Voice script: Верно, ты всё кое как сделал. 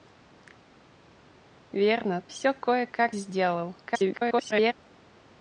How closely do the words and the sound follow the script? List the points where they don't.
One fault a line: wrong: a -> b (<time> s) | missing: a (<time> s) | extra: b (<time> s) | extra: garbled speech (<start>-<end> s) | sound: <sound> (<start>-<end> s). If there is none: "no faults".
missing: ты (2.3 s)
extra: garbled speech (3.8-4.7 s)